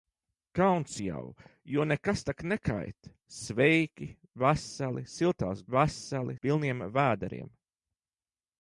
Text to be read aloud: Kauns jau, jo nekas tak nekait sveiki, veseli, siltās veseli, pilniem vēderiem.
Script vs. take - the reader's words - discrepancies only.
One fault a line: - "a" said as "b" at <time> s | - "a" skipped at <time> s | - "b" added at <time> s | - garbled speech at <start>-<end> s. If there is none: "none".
none